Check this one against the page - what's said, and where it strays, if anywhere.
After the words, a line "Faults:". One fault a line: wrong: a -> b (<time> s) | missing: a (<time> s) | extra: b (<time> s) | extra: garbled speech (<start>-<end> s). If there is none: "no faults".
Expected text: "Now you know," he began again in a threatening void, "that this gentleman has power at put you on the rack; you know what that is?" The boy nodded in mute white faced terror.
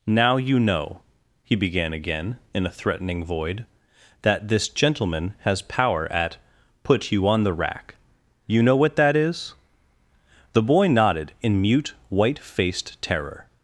"Now you know," he began again in a threatening void, "that this gentleman has power at put you on the rack; you know what that is?" The boy nodded in mute white faced terror.
Faults:
no faults